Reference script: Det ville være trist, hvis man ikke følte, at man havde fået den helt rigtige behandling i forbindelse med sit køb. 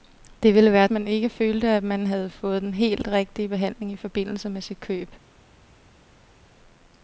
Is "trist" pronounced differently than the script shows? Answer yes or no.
yes